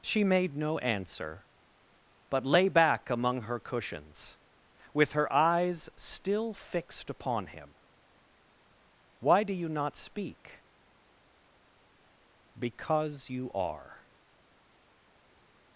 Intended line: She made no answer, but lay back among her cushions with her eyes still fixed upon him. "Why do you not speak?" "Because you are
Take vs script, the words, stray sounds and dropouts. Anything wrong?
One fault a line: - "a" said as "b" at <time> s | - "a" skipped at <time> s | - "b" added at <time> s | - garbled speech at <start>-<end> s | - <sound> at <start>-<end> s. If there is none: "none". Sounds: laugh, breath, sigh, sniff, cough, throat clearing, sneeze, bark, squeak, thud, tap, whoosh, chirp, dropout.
none